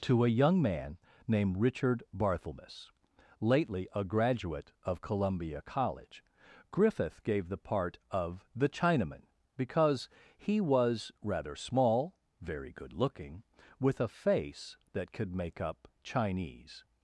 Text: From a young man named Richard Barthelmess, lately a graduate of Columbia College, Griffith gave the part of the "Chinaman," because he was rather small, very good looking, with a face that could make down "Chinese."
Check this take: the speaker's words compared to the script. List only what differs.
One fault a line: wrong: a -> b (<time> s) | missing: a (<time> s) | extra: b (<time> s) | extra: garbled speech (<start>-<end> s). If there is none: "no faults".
wrong: From -> To (0.0 s)
wrong: down -> up (15.6 s)